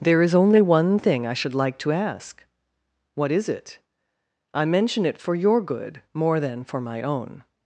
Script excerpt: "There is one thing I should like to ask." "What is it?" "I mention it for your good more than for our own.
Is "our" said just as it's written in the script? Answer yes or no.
no